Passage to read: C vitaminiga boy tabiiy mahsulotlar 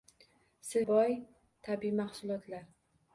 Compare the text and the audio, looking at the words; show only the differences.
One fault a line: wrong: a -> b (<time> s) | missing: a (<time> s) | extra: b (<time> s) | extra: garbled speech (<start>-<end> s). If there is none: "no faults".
missing: vitaminiga (0.8 s)